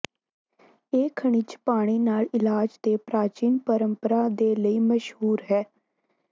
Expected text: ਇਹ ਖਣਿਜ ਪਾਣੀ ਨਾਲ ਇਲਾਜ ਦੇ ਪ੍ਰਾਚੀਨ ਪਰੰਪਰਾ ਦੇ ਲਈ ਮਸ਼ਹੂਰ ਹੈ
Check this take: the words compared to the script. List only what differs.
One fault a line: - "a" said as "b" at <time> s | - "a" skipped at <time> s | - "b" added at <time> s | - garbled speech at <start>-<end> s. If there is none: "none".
none